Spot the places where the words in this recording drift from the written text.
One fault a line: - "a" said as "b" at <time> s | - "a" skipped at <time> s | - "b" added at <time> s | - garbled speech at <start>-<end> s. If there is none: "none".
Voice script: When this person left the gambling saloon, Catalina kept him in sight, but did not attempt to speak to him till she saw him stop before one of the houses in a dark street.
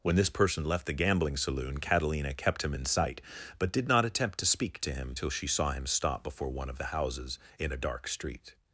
none